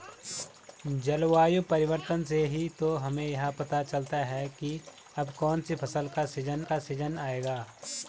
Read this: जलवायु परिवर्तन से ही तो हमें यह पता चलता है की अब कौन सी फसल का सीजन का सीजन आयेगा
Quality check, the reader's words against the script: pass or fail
pass